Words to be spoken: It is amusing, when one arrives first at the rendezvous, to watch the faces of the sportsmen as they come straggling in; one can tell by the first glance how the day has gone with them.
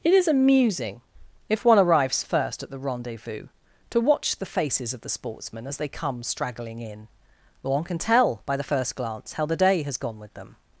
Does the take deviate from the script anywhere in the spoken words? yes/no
yes